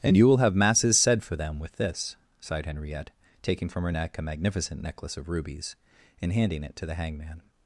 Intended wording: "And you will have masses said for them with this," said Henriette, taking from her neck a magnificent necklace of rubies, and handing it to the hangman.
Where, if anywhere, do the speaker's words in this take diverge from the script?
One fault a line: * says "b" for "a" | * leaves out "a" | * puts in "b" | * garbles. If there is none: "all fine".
* says "sighed" for "said"